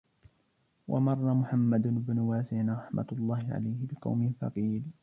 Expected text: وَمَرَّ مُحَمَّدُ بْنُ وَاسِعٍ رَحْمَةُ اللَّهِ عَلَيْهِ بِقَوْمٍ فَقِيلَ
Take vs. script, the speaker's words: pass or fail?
pass